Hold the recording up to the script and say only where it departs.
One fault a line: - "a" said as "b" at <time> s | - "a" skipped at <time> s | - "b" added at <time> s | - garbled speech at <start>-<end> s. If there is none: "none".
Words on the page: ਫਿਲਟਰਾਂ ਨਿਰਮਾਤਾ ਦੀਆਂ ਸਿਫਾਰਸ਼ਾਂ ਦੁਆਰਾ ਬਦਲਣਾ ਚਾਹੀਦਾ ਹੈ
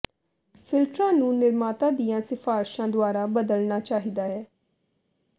- "ਨੂੰ" added at 1.1 s